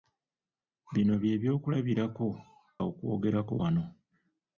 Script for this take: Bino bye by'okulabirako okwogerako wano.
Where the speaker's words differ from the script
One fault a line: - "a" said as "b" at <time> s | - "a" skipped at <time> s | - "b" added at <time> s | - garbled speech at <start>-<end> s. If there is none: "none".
none